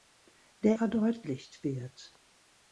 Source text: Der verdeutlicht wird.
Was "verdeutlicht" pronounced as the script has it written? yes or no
yes